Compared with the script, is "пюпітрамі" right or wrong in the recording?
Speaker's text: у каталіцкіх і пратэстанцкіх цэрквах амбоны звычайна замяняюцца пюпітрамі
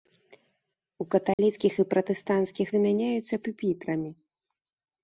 right